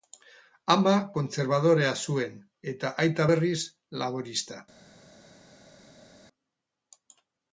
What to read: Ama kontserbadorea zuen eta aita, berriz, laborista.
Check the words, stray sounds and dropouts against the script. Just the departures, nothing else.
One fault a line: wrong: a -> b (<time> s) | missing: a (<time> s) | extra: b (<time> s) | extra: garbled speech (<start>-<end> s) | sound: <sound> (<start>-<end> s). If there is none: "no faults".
no faults